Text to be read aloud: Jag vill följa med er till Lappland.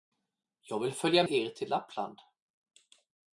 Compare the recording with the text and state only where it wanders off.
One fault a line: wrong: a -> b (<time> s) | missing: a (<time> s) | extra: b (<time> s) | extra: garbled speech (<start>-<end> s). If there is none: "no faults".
missing: med (1.2 s)